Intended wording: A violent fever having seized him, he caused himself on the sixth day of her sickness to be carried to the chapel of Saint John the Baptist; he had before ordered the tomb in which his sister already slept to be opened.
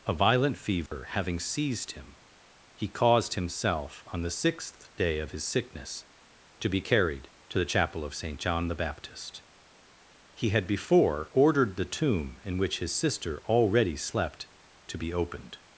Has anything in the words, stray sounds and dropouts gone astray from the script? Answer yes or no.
yes